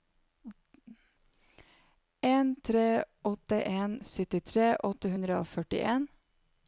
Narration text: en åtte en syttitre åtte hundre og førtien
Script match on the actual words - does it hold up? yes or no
no